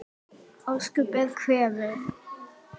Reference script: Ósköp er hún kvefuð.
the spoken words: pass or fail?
fail